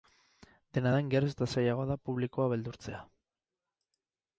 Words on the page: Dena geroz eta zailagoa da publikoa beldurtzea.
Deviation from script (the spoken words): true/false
true